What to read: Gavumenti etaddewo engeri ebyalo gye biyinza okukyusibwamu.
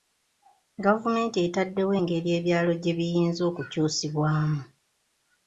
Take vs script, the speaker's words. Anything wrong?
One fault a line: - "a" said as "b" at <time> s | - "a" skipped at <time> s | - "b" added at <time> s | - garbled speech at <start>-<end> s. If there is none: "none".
none